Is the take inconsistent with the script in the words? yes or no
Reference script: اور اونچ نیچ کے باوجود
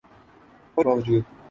yes